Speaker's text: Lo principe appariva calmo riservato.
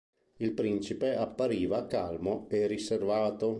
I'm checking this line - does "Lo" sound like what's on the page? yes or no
no